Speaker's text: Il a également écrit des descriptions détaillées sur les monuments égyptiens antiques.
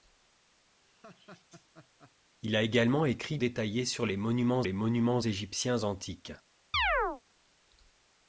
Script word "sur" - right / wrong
wrong